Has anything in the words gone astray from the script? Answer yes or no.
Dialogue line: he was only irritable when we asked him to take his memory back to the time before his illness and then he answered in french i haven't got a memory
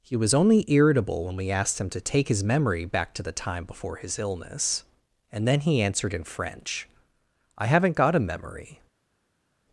no